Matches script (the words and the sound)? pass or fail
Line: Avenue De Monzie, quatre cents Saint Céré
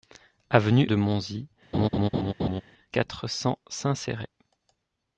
fail